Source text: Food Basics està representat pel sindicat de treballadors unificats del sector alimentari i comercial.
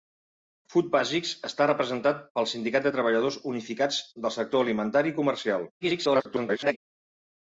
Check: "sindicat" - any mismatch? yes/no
no